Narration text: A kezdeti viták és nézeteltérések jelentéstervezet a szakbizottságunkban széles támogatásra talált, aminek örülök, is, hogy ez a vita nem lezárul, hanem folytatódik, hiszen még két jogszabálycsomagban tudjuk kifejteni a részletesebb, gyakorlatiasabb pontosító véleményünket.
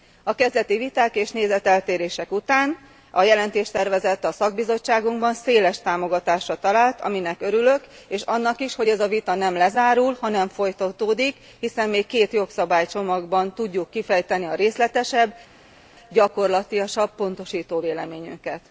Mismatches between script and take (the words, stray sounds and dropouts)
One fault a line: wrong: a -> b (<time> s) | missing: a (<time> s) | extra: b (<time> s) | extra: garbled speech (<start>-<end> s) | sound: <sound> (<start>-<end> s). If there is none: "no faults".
extra: után a (2.3 s)
extra: és annak (8.1 s)